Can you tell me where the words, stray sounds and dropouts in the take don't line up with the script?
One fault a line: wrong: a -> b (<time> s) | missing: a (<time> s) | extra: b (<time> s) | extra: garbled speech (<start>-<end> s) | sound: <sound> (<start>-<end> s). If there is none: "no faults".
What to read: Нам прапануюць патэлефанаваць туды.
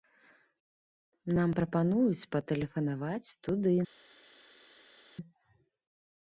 no faults